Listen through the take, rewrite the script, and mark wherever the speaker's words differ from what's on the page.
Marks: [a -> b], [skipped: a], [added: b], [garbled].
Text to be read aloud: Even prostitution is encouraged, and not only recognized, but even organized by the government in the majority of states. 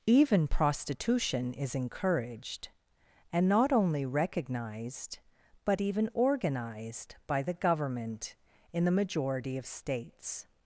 Even prostitution is encouraged, and not only recognized, but even organized by the government in the majority of states.